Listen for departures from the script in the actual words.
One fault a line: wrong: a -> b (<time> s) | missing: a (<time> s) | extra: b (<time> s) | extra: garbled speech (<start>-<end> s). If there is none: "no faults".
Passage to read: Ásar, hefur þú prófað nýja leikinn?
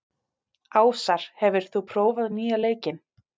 no faults